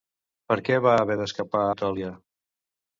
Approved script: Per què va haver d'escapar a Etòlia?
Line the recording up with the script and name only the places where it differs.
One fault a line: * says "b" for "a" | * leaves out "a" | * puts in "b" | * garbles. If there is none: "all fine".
* leaves out "a"